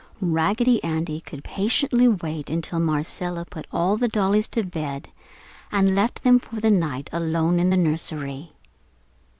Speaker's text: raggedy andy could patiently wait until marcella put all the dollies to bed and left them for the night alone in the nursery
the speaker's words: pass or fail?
pass